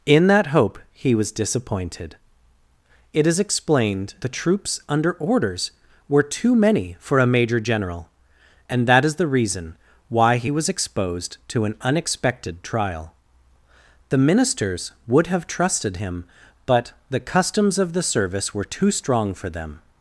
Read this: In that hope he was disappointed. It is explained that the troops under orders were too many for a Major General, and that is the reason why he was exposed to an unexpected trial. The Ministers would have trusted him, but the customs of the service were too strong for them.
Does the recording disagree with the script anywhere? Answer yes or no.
yes